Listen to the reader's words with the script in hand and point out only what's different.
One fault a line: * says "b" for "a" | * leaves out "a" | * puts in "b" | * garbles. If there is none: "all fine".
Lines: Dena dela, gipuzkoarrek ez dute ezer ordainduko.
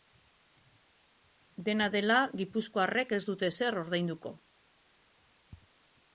all fine